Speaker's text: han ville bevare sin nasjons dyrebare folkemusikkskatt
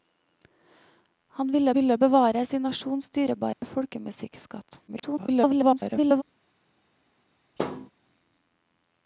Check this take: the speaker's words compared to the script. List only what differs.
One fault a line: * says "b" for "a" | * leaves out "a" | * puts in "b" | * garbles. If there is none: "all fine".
* puts in "ville"
* garbles